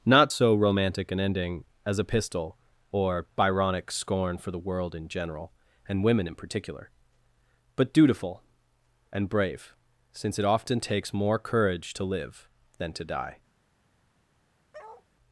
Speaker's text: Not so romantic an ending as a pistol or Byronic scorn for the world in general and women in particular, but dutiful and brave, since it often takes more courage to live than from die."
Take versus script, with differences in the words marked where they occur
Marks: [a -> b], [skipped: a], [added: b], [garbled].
Not so romantic an ending as a pistol or Byronic scorn for the world in general and women in particular, but dutiful and brave, since it often takes more courage to live than [from -> to] die."